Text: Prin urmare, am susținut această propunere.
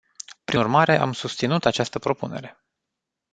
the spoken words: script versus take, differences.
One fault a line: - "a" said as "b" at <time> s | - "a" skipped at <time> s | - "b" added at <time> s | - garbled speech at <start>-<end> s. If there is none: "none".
none